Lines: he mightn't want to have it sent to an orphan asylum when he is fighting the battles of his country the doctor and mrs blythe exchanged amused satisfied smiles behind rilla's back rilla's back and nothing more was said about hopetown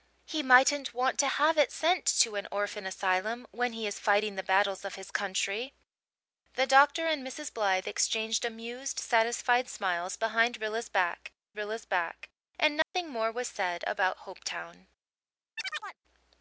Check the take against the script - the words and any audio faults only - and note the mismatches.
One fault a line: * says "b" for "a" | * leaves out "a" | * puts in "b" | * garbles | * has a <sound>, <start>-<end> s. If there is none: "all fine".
* has a dropout, 12.8-12.9 s
* has a chirp, 15.6-16.0 s